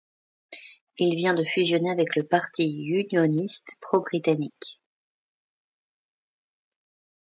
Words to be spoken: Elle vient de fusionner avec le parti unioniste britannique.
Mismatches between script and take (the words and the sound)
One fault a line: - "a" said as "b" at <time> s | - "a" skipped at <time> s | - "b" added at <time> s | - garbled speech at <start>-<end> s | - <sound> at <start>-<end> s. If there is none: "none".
- "Elle" said as "Il" at 1.0 s
- "pro" added at 3.8 s